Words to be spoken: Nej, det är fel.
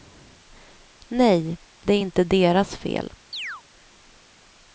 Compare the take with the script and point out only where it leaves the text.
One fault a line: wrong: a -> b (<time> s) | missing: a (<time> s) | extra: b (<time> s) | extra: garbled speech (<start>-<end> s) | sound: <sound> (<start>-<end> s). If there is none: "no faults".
extra: inte deras (2.0 s)
sound: chirp (3.3-3.6 s)